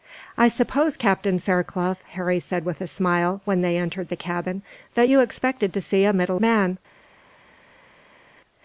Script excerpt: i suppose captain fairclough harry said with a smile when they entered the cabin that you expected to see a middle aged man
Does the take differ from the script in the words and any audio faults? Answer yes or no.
yes